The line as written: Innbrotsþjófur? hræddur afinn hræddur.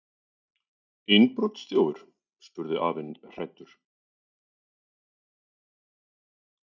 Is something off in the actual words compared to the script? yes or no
yes